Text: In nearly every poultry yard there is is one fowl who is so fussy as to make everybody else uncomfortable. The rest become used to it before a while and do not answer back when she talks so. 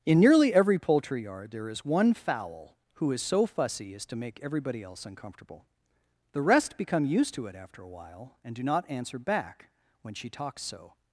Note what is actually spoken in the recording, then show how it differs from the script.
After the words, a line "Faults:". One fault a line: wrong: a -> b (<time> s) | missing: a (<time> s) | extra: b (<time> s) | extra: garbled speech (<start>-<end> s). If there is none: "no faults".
In nearly every poultry yard there is one fowl who is so fussy as to make everybody else uncomfortable. The rest become used to it after a while and do not answer back when she talks so.
Faults:
missing: is (1.9 s)
wrong: before -> after (7.6 s)